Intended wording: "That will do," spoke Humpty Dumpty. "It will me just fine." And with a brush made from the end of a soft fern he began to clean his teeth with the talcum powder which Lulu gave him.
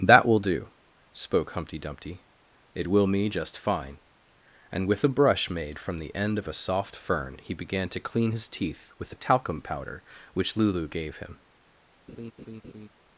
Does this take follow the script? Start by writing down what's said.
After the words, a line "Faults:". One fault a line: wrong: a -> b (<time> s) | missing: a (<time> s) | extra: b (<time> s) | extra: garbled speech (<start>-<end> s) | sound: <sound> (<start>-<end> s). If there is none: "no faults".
"That will do," spoke Humpty Dumpty. "It will me just fine." And with a brush made from the end of a soft fern he began to clean his teeth with the talcum powder which Lulu gave him.
Faults:
sound: laugh (12.1-12.9 s)